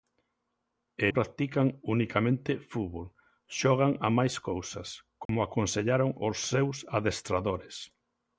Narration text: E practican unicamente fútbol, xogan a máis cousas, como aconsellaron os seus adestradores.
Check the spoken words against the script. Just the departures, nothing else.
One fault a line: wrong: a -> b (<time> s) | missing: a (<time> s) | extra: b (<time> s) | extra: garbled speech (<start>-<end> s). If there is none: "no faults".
no faults